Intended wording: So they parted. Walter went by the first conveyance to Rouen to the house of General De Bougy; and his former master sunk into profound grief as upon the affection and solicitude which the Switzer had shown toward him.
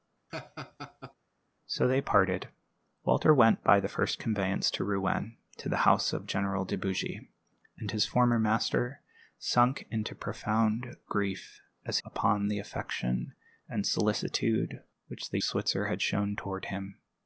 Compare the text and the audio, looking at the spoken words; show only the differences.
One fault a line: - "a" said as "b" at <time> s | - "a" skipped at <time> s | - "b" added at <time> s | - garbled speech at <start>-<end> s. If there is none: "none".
none